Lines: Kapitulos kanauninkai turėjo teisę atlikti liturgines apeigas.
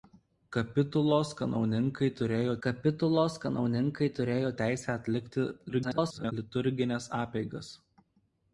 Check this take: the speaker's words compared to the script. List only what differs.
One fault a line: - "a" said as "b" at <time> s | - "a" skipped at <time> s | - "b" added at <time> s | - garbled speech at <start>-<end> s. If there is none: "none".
- "kapitulos kanauninkai turėjo" added at 2.6 s
- garbled speech at 5.7-6.3 s